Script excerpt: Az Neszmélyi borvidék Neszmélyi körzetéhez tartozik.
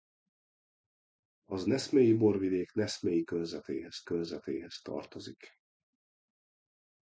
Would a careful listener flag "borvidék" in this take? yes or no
no